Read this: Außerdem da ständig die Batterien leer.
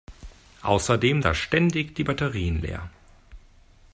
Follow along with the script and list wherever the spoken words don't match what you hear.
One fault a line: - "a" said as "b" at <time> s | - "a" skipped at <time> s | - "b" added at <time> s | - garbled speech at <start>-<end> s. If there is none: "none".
none